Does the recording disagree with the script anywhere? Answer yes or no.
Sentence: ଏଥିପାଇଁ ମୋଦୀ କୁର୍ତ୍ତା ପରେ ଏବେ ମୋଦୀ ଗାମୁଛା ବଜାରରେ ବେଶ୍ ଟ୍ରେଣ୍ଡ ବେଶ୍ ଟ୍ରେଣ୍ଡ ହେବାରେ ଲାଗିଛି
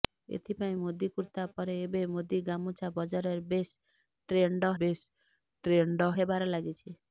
no